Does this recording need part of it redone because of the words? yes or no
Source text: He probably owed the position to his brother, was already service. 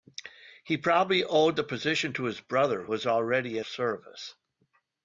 no